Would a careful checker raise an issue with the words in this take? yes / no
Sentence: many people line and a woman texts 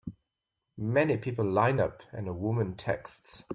yes